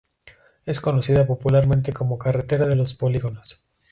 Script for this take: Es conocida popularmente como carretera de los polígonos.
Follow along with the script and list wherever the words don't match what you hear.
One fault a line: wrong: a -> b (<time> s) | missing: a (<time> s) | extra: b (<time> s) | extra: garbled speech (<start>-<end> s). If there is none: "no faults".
no faults